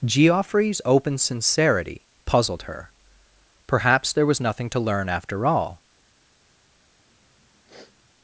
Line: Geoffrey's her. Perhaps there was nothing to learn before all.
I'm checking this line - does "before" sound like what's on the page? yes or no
no